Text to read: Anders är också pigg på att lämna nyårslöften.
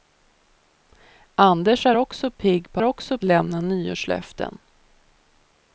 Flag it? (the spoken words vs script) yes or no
yes